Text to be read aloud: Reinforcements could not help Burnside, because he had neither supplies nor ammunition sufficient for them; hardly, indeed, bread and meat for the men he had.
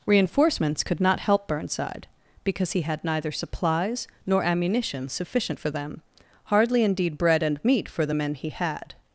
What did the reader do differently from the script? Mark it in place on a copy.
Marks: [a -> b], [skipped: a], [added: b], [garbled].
Reinforcements could not help Burnside, because he had neither supplies nor ammunition sufficient for them; hardly, indeed, bread and meat for the men he had.